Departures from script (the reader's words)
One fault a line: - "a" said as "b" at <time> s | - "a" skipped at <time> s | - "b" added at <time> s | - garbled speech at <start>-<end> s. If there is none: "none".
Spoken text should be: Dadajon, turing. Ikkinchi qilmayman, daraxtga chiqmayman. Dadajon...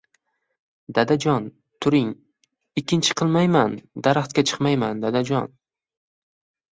none